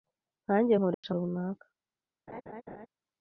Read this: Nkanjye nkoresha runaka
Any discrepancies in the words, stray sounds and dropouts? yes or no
yes